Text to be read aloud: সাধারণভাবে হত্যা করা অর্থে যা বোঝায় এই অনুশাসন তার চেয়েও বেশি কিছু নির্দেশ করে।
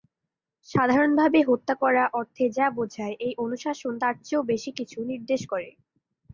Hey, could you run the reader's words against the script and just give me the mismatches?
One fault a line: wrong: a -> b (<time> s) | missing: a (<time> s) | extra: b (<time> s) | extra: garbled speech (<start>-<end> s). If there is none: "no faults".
no faults